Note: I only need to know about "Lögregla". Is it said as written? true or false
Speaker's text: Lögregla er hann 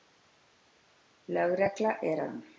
true